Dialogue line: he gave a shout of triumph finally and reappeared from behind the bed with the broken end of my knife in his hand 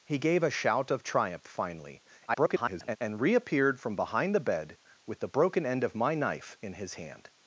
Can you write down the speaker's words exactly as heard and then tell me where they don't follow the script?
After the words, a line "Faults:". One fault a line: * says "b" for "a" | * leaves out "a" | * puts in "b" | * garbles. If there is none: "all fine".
he gave a shout of triumph finally [garbled] and reappeared from behind the bed with the broken end of my knife in his hand
Faults:
* garbles